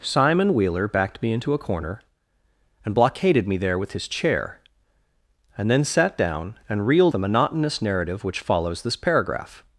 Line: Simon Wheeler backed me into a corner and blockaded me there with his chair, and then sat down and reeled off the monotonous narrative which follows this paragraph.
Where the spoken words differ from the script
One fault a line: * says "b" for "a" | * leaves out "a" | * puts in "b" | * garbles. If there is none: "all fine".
* leaves out "off"